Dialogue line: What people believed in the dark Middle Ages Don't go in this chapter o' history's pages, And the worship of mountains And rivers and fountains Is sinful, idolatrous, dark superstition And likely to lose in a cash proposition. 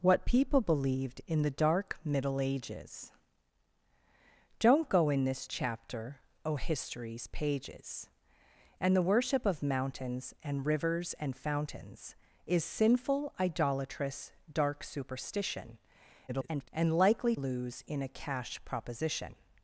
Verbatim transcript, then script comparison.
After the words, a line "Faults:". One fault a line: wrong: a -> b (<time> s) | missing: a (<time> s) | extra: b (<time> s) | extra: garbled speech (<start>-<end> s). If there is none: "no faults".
What people believed in the dark Middle Ages Don't go in this chapter o' history's pages, And the worship of mountains And rivers and fountains Is sinful, idolatrous, dark superstition [garbled] And likely lose in a cash proposition.
Faults:
extra: garbled speech (16.3-16.7 s)
missing: to (17.3 s)